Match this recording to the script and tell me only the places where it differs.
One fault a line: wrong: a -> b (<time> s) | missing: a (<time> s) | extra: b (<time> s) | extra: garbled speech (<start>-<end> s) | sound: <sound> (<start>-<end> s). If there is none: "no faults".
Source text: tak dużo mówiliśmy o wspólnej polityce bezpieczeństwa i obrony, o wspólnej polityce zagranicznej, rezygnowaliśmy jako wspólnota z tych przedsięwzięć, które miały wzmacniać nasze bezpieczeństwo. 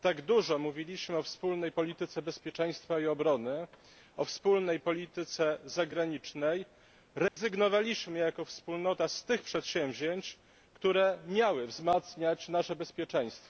sound: dropout (7.3-7.4 s)